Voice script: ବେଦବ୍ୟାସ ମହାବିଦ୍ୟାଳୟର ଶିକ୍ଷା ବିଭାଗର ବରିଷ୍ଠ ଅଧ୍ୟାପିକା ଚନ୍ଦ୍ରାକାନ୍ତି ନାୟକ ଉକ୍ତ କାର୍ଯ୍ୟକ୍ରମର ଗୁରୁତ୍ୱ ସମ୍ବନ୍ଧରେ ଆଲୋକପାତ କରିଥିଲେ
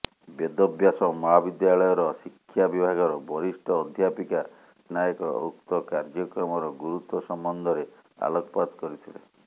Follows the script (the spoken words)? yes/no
no